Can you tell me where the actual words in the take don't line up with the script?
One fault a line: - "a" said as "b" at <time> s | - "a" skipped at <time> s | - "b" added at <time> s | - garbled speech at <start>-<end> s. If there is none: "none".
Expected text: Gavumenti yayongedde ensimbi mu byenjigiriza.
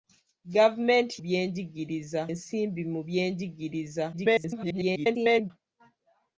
- "yayongedde" said as "byenjigiriza" at 1.2 s
- garbled speech at 4.1-5.5 s